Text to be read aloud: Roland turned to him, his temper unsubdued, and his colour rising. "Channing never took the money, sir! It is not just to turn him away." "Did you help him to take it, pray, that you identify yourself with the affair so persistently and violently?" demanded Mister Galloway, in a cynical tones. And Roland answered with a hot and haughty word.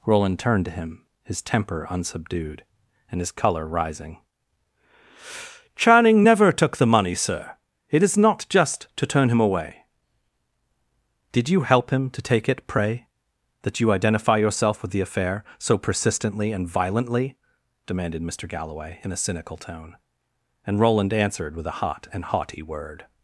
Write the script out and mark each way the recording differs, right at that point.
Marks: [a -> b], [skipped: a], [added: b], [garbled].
Roland turned to him, his temper unsubdued, and his colour rising. "Channing never took the money, sir! It is not just to turn him away." "Did you help him to take it, pray, that you identify yourself with the affair so persistently and violently?" demanded Mister Galloway, in a cynical [tones. -> tone] And Roland answered with a hot and haughty word.